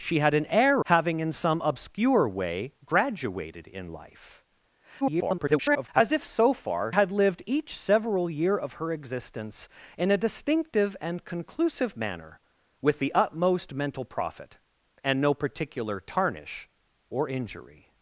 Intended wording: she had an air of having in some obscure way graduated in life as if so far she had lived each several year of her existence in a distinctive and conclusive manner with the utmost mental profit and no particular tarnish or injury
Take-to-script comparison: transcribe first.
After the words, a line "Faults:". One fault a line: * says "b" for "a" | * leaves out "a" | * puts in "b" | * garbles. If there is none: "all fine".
she had an air having in some obscure way graduated in life [garbled] as if so far had lived each several year of her existence in a distinctive and conclusive manner with the utmost mental profit and no particular tarnish or injury
Faults:
* leaves out "of"
* garbles
* leaves out "she"